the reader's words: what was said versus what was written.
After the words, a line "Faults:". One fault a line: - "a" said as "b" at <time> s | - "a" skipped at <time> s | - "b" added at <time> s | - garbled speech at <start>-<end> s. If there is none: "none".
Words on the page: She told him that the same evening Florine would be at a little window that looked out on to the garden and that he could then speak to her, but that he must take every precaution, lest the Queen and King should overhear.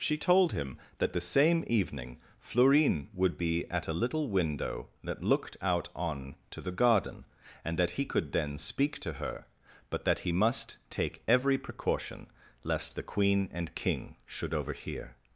She told him that the same evening Florine would be at a little window that looked out on to the garden and that he could then speak to her, but that he must take every precaution, lest the Queen and King should overhear.
Faults:
none